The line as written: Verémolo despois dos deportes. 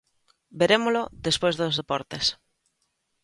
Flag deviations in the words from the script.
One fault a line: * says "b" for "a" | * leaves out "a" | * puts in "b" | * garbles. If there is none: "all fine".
all fine